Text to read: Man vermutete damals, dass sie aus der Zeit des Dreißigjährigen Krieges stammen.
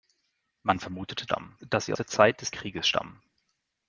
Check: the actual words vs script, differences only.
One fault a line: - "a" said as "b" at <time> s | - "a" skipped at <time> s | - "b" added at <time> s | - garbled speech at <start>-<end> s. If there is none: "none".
- "damals" said as "stammen" at 1.2 s
- "aus" skipped at 1.9 s
- "Dreißigjährigen" skipped at 2.5 s